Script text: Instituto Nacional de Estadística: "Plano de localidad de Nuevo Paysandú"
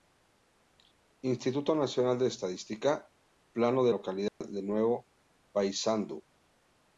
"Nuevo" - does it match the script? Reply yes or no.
yes